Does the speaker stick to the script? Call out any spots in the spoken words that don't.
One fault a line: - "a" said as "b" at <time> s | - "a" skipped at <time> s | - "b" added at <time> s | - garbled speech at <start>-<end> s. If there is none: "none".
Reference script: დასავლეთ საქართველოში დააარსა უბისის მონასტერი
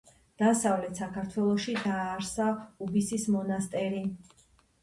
none